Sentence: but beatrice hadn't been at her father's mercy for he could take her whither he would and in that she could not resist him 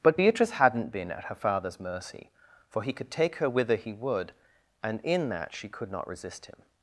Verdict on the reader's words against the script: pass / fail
pass